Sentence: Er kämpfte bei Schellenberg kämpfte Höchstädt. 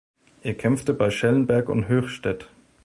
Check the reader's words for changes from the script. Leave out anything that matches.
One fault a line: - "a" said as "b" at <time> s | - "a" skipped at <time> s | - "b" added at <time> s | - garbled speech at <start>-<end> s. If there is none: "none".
- "kämpfte" said as "und" at 1.7 s